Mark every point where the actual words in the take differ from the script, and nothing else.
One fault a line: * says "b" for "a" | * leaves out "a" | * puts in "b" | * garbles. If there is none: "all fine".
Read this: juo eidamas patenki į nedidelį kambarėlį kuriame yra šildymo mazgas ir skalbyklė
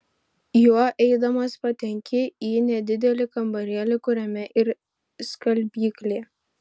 * leaves out "yra šildymo mazgas"